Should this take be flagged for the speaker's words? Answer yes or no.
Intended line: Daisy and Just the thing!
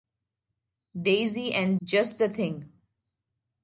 no